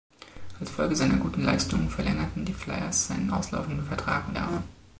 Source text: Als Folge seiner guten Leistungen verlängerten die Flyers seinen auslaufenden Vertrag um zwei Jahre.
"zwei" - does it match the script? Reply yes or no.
no